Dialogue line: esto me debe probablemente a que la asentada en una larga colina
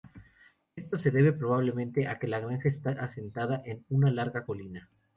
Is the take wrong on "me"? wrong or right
wrong